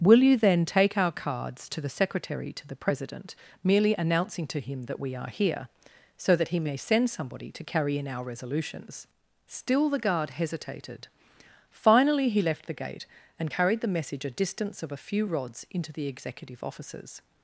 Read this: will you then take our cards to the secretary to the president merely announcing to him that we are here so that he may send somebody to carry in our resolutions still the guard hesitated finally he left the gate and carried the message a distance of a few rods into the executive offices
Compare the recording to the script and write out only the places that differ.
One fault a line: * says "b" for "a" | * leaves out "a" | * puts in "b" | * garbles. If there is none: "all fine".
all fine